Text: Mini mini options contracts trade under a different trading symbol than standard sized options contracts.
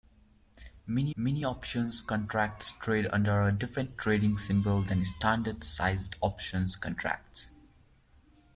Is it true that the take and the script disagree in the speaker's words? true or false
false